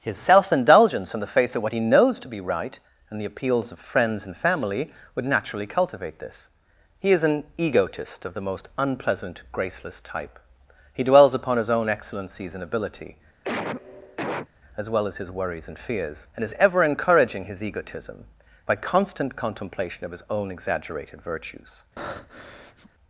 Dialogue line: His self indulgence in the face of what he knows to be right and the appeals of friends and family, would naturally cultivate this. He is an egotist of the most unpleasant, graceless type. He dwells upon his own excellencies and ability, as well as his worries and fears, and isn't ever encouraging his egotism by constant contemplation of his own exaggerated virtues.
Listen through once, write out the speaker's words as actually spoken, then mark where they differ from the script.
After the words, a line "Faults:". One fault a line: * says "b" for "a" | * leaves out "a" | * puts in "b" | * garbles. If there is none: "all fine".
His self indulgence in the face of what he knows to be right and the appeals of friends and family, would naturally cultivate this. He is an egotist of the most unpleasant, graceless type. He dwells upon his own excellencies and ability, as well as his worries and fears, and is ever encouraging his egotism by constant contemplation of his own exaggerated virtues.
Faults:
* says "is" for "isn't"